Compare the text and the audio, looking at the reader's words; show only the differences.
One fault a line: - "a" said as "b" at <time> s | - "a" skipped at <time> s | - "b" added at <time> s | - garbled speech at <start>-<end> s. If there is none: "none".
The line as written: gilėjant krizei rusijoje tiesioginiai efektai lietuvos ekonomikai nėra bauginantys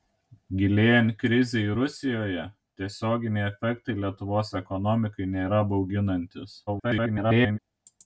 - garbled speech at 6.7-7.6 s